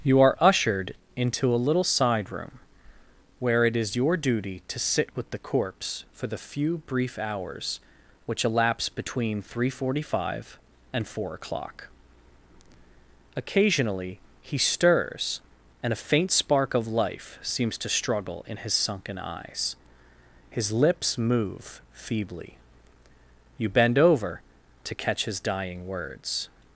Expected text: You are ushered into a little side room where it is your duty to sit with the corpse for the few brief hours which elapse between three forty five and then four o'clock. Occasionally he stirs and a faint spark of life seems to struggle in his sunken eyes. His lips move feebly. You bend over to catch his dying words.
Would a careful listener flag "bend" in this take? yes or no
no